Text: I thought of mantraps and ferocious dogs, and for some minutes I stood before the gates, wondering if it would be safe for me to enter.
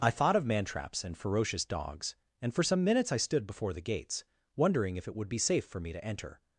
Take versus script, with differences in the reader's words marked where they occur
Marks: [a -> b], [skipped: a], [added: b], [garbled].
I thought of mantraps and ferocious dogs, and for some minutes I stood before the gates, wondering if it would be safe for me to enter.